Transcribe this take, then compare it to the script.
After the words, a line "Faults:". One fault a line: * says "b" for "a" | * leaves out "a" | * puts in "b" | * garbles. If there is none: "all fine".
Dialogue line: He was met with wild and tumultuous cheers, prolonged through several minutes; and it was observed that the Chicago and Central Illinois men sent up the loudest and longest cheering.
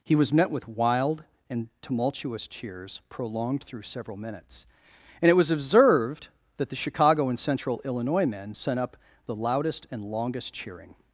He was met with wild and tumultuous cheers, prolonged through several minutes; and it was observed that the Chicago and Central Illinois men sent up the loudest and longest cheering.
Faults:
all fine